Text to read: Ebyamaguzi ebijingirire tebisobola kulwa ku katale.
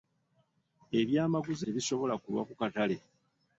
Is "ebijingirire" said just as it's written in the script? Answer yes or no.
no